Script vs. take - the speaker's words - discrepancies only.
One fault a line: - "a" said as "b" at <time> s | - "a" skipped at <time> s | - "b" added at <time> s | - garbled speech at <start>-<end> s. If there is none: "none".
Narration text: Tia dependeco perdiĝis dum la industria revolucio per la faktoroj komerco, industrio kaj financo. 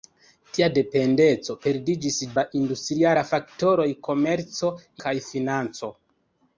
- "dum" skipped at 2.2 s
- "revolucio per" skipped at 3.1 s
- "industrio" skipped at 4.7 s